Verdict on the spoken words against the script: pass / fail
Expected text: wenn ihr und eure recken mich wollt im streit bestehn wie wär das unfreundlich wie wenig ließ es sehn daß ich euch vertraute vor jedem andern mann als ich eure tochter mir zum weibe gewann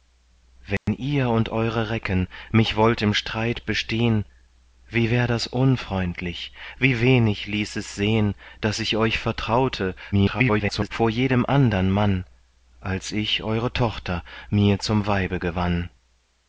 fail